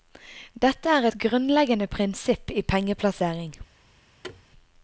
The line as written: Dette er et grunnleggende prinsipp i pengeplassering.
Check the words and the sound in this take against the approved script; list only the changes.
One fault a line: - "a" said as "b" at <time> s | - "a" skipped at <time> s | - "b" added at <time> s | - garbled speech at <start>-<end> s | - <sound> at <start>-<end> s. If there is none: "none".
- thud at 4.2-4.4 s